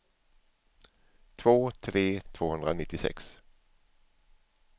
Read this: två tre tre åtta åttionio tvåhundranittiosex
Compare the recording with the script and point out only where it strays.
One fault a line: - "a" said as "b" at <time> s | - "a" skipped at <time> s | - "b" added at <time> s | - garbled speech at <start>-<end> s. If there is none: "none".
- "tre åtta åttionio" skipped at 2.2 s